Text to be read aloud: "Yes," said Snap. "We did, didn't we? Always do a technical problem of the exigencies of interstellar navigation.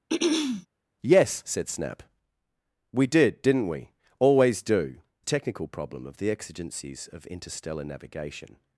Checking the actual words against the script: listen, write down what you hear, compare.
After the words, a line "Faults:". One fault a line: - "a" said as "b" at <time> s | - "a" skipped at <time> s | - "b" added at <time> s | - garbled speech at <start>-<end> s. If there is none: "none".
"Yes," said Snap. "We did, didn't we? Always do a technical problem of the exigencies of interstellar navigation.
Faults:
none